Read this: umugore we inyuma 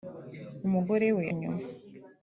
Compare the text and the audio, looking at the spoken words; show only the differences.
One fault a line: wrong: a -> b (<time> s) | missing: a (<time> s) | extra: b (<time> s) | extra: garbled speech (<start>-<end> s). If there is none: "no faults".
no faults